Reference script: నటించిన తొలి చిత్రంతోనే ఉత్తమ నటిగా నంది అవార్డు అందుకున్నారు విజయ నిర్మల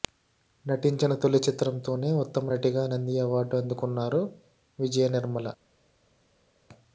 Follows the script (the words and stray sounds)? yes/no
yes